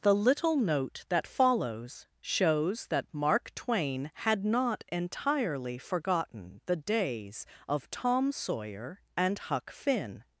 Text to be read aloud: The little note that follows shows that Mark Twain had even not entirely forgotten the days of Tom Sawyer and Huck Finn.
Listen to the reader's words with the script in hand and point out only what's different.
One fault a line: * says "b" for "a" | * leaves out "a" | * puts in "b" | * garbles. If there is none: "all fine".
* leaves out "even"